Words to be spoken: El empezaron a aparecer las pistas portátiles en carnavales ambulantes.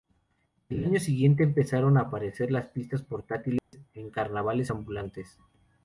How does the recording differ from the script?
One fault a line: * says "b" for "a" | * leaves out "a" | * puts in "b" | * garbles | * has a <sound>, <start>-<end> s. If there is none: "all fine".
* puts in "año siguiente"
* has a dropout, 3.6-3.7 s